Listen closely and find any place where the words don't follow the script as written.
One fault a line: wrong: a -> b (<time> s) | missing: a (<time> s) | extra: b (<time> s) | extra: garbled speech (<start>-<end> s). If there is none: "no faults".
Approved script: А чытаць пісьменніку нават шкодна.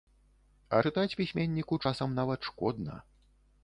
extra: часам (1.9 s)